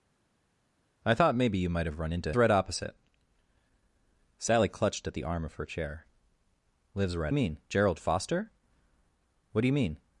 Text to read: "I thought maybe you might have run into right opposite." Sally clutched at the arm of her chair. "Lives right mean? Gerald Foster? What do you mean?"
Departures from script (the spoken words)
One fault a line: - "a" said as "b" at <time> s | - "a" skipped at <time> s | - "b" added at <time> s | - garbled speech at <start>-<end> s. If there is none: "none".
none